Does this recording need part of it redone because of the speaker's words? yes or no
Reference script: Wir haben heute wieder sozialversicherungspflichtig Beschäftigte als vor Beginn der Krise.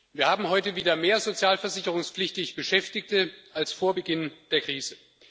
yes